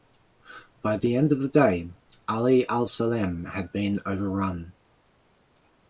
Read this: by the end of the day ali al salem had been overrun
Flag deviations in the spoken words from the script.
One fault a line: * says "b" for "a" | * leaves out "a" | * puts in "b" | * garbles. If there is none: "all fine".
all fine